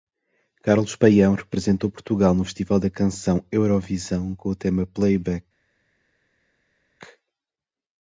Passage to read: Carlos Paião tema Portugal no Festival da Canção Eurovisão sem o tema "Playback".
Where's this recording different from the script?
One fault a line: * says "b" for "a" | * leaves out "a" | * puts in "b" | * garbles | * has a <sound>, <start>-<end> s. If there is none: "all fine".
* says "representou" for "tema"
* says "com" for "sem"